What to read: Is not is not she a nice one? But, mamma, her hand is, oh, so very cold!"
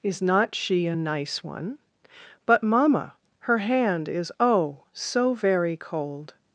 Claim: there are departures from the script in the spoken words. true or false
true